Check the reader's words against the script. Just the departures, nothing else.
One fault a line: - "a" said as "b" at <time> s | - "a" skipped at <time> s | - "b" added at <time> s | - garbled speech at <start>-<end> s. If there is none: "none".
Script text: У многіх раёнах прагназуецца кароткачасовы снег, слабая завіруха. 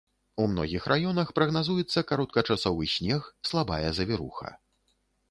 none